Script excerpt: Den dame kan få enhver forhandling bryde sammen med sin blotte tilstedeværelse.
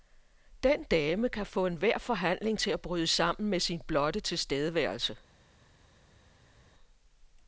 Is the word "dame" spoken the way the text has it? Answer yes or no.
yes